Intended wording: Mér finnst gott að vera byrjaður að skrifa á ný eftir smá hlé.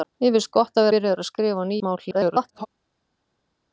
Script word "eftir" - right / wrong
wrong